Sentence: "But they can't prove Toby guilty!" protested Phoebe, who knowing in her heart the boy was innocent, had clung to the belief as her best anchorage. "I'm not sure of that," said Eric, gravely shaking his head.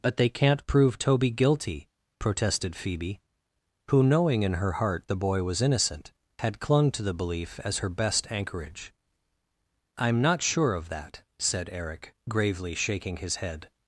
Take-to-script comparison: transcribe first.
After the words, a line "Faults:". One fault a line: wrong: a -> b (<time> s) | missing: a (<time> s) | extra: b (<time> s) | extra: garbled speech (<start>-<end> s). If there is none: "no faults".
"But they can't prove Toby guilty!" protested Phoebe, who knowing in her heart the boy was innocent, had clung to the belief as her best anchorage. "I'm not sure of that," said Eric, gravely shaking his head.
Faults:
no faults